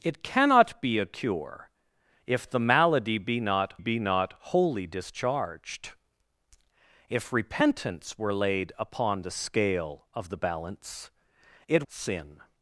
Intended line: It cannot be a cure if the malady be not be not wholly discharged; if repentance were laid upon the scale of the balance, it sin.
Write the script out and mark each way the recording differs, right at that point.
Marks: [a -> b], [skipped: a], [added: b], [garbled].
It cannot be a cure if the malady be not be not wholly discharged; if repentance were laid upon the scale of the balance, it sin.